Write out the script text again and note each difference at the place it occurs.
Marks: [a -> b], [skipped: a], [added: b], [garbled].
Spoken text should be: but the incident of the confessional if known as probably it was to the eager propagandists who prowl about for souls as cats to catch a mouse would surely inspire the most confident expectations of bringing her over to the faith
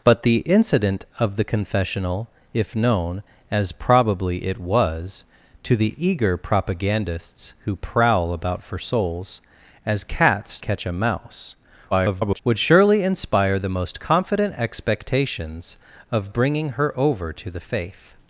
but the incident of the confessional if known as probably it was to the eager propagandists who prowl about for souls as cats [skipped: to] catch a mouse [garbled] would surely inspire the most confident expectations of bringing her over to the faith